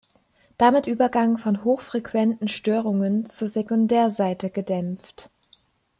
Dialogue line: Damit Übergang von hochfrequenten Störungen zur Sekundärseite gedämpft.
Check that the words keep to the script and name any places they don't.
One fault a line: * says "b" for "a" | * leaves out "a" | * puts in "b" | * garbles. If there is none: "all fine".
all fine